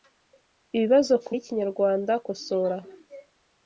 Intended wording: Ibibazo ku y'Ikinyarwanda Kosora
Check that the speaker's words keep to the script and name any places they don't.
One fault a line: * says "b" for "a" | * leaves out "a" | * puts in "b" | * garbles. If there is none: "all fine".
all fine